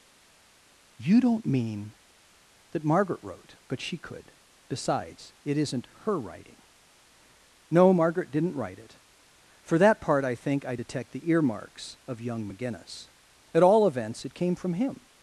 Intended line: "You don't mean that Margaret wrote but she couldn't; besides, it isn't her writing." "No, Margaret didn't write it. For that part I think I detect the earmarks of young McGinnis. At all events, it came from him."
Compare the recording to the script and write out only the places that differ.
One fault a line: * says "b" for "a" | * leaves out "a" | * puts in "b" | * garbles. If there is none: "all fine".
* says "could" for "couldn't"